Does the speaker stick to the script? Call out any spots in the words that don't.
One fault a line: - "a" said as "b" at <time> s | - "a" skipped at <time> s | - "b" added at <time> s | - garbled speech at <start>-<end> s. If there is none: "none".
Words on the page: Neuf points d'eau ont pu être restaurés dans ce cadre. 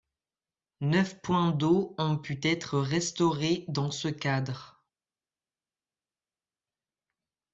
none